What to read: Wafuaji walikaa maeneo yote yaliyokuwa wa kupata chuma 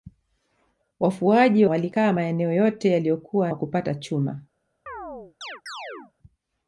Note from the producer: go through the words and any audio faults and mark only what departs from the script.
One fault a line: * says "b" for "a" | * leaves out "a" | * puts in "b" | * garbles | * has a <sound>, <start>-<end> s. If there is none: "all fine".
* has a chirp, 4.9-6.1 s